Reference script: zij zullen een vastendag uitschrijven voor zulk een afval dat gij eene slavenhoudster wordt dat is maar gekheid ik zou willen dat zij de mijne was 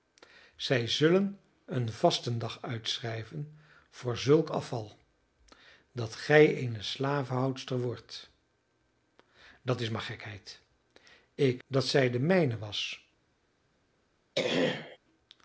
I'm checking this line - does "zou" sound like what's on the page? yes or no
no